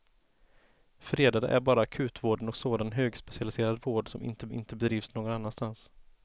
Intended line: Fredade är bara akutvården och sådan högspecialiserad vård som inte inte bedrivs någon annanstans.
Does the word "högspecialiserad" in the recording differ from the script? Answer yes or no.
no